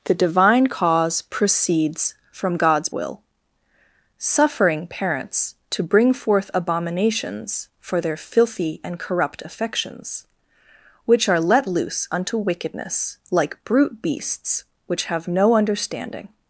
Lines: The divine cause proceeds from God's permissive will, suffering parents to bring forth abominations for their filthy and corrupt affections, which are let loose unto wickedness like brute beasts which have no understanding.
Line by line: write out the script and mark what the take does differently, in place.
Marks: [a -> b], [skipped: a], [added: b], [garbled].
The divine cause proceeds from God's [skipped: permissive] will, suffering parents to bring forth abominations for their filthy and corrupt affections, which are let loose unto wickedness like brute beasts which have no understanding.